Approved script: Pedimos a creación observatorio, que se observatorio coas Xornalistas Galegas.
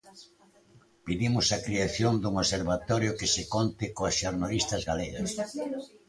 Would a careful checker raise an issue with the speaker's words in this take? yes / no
yes